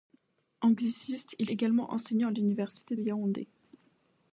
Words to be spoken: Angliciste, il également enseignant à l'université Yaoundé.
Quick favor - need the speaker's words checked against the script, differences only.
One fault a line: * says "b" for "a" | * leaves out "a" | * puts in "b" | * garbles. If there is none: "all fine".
all fine